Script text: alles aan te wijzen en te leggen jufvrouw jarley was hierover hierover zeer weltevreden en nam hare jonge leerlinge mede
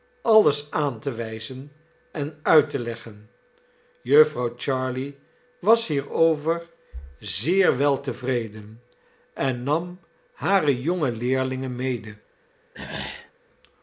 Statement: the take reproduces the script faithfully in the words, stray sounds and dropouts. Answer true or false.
false